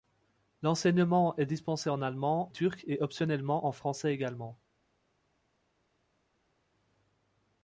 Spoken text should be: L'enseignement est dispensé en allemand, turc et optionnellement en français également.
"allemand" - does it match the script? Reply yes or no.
yes